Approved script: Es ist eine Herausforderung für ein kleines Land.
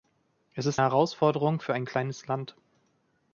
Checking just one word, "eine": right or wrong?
wrong